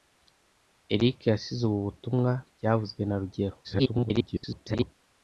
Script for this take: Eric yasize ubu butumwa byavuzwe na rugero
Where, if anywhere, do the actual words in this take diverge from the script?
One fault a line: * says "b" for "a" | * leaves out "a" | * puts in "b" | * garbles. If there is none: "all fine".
* garbles